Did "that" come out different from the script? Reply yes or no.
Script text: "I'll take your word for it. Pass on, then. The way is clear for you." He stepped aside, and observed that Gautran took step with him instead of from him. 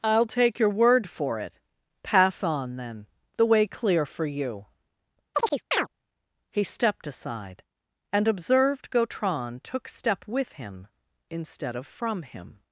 yes